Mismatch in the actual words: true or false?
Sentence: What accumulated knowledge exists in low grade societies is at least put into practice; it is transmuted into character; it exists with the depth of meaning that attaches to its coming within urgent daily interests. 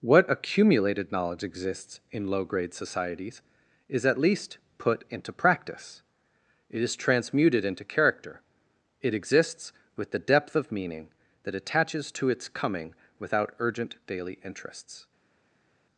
true